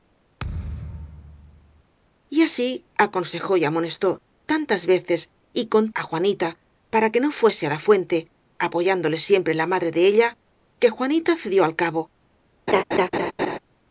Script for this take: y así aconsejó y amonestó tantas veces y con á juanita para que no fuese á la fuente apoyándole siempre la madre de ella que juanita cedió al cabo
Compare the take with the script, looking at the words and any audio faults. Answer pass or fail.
fail